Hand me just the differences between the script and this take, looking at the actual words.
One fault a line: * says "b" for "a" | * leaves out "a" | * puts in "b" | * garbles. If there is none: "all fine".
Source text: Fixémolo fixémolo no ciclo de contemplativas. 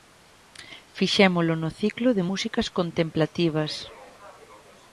* leaves out "fixémolo"
* puts in "músicas"